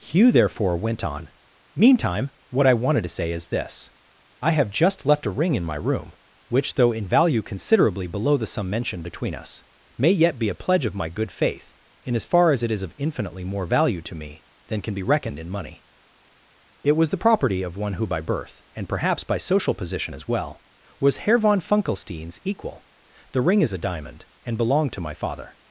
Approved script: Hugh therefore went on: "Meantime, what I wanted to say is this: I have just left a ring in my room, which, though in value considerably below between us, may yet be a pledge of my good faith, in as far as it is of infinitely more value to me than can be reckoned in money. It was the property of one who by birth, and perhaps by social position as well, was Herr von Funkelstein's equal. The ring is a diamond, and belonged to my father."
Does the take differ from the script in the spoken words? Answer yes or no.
yes